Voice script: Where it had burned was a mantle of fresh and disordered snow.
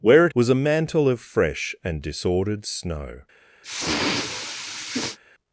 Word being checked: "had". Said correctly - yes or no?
no